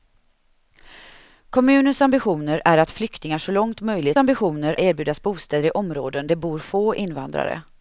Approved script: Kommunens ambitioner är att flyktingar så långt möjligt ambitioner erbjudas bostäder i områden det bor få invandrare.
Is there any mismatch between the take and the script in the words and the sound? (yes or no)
no